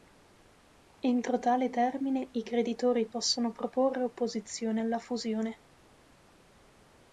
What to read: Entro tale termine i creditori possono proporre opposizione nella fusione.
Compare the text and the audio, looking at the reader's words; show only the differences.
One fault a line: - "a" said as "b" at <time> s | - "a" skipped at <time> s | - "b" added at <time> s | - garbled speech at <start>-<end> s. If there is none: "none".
- "nella" said as "alla" at 4.8 s